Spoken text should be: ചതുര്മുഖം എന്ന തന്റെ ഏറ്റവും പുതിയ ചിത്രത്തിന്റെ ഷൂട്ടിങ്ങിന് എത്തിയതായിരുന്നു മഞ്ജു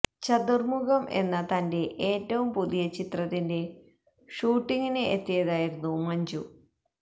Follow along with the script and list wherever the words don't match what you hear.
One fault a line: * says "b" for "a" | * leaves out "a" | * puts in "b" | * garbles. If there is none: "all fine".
all fine